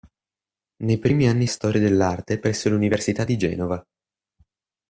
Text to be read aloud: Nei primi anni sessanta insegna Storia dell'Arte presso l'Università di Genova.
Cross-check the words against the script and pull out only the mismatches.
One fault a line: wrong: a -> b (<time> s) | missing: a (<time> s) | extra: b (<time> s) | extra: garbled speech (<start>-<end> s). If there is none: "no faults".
missing: sessanta insegna (1.4 s)